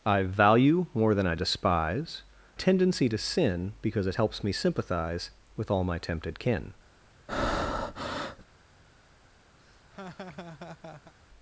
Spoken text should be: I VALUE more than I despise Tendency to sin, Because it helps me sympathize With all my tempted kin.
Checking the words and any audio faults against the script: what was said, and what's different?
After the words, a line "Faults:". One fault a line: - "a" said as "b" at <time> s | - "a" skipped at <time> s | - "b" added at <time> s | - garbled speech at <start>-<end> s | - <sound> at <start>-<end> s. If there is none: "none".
I VALUE more than I despise Tendency to sin, Because it helps me sympathize With all my tempted kin.
Faults:
- breath at 7.3-8.4 s
- laugh at 9.6-11.1 s